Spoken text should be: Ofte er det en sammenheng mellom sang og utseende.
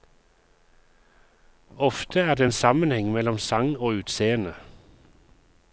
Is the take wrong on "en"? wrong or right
right